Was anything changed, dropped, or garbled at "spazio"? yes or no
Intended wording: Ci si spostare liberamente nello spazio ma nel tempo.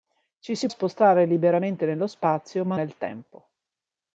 no